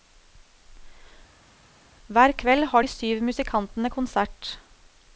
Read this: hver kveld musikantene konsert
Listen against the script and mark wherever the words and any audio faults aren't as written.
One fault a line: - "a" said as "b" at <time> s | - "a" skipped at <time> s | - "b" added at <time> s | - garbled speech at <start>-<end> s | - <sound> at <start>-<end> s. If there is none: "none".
- "har de syv" added at 2.6 s